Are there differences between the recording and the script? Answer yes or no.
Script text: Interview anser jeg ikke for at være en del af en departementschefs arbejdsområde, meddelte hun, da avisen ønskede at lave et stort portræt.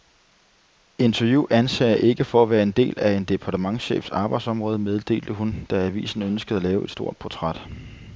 no